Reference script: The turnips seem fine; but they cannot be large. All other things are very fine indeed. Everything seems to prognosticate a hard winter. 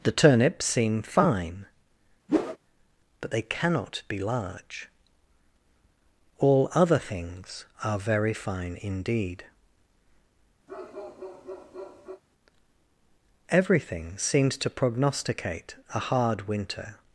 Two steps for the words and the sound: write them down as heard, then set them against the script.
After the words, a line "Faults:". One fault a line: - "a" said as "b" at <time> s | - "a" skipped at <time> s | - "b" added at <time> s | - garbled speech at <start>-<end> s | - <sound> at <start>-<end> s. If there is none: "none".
The turnips seem fine; but they cannot be large. All other things are very fine indeed. Everything seems to prognosticate a hard winter.
Faults:
- whoosh at 2.3-2.6 s
- bark at 10.7-12.2 s